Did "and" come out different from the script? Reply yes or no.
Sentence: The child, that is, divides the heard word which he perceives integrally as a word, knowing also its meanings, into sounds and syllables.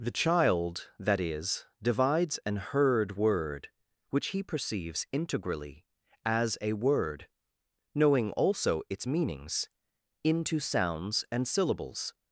no